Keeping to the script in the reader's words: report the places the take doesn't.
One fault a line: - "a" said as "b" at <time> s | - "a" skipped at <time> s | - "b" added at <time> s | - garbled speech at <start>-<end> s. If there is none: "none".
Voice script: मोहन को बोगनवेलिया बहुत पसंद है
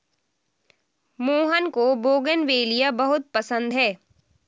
none